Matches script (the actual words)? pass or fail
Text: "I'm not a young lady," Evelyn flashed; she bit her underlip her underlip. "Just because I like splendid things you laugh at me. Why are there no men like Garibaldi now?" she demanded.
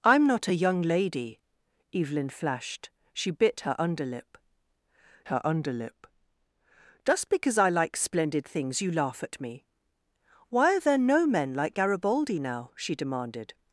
pass